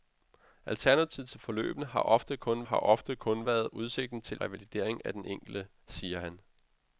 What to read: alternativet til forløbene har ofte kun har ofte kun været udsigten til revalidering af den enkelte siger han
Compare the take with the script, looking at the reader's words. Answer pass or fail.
pass